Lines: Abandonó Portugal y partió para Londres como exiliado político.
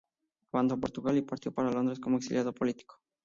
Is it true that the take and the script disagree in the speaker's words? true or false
false